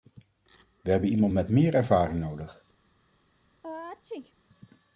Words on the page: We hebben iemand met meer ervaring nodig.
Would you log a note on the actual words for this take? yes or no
no